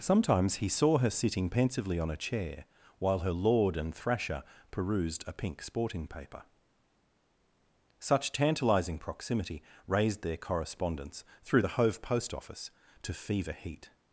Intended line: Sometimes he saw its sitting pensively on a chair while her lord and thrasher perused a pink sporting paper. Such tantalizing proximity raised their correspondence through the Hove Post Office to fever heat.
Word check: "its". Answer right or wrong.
wrong